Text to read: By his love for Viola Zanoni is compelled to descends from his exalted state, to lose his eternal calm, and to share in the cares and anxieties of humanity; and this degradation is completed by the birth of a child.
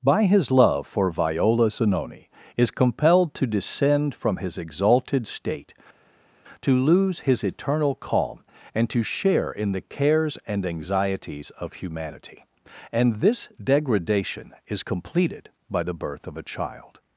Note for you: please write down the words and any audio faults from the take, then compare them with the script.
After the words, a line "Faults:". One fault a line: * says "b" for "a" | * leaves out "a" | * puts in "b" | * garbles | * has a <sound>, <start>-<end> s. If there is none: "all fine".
By his love for Viola Zanoni is compelled to descend from his exalted state, to lose his eternal calm, and to share in the cares and anxieties of humanity; and this degradation is completed by the birth of a child.
Faults:
* says "descend" for "descends"